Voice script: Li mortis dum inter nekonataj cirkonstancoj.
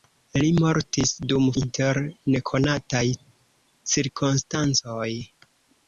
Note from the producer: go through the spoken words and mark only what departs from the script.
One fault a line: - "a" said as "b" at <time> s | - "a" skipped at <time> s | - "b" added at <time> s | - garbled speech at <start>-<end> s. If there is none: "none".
none